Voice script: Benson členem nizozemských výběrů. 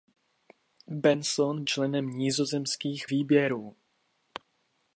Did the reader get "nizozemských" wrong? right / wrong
right